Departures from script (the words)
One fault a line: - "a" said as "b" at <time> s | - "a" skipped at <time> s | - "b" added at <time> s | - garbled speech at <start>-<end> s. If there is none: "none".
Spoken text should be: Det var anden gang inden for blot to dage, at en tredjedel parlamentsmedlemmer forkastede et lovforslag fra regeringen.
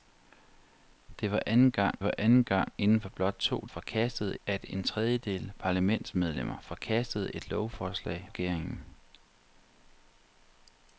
- "var anden gang" added at 2.0 s
- "dage" said as "forkastede" at 3.6 s
- "fra" skipped at 8.3 s